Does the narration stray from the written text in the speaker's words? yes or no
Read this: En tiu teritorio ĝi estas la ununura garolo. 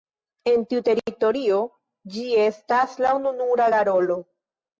no